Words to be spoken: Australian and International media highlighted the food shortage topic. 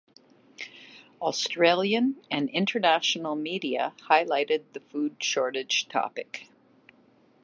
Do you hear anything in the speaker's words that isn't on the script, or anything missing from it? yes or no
no